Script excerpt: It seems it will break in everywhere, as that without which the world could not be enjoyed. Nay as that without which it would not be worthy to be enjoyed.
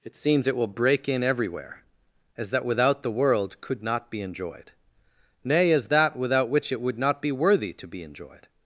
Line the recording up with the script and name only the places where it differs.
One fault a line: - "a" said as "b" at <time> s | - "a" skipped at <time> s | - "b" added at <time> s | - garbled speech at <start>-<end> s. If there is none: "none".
- "which" skipped at 3.0 s